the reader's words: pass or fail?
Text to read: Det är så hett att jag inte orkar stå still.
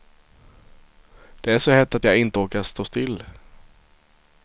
pass